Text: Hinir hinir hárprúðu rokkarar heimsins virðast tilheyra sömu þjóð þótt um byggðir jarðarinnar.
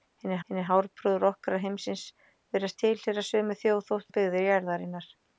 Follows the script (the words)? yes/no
yes